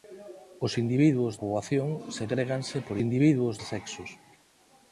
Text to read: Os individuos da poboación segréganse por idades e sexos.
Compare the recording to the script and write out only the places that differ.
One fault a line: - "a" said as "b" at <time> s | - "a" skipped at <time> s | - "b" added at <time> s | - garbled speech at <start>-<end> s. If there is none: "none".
- "da" skipped at 1.3 s
- "idades" said as "individuos" at 3.0 s